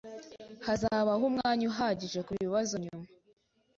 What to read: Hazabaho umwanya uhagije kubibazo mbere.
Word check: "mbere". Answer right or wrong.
wrong